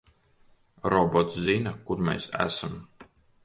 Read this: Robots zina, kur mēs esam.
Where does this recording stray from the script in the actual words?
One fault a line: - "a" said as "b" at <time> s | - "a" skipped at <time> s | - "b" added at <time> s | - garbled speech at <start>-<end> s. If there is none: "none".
none